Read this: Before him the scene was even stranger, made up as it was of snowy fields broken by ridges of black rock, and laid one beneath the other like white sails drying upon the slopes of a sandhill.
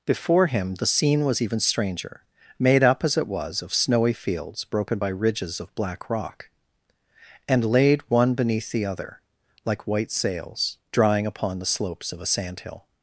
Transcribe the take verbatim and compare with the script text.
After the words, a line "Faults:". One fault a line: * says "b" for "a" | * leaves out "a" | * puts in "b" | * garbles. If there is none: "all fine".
Before him the scene was even stranger, made up as it was of snowy fields broken by ridges of black rock, and laid one beneath the other like white sails drying upon the slopes of a sandhill.
Faults:
all fine